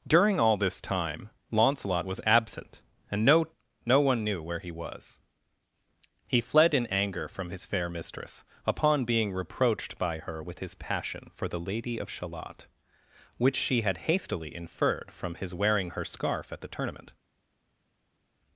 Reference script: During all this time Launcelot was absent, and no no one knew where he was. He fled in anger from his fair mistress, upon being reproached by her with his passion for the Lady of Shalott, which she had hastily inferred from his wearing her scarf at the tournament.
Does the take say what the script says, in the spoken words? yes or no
yes